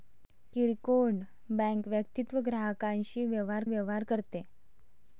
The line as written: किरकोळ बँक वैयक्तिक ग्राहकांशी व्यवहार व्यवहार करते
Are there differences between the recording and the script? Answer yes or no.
no